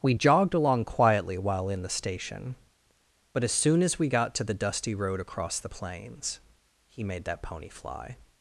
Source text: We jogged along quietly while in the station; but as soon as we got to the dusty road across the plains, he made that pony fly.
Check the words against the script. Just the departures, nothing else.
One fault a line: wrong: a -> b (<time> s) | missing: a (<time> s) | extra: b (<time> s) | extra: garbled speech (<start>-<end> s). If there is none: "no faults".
no faults